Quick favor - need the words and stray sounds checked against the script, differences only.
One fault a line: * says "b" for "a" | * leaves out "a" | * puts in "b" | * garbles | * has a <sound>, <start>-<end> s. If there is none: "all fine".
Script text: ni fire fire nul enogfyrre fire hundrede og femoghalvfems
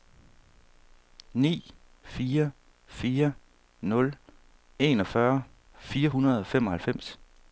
all fine